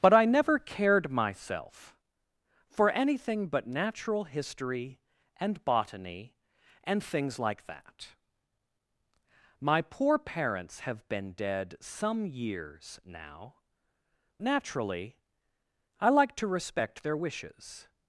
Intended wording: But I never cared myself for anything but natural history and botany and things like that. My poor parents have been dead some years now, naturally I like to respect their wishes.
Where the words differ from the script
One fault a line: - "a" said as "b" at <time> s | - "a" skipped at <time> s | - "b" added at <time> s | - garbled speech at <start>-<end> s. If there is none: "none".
none